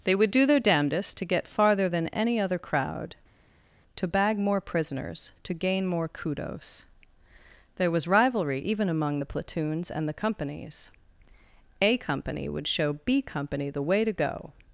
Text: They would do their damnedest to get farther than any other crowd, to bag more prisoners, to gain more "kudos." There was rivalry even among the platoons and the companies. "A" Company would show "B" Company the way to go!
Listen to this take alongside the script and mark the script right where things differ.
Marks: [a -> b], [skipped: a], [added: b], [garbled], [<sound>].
They would do their damnedest to get farther than any other crowd, to bag more prisoners, to gain more "kudos." There was rivalry even among the platoons and the companies. "A" Company would show "B" Company the way to go!